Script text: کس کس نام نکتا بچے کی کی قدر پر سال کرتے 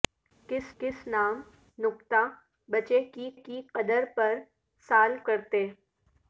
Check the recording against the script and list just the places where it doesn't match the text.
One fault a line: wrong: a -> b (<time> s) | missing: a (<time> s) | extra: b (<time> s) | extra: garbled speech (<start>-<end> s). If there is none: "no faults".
no faults